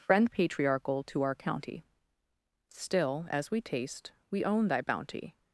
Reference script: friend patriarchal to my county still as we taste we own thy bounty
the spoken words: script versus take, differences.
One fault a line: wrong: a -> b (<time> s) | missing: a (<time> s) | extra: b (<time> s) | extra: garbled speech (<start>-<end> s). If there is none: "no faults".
wrong: my -> our (1.2 s)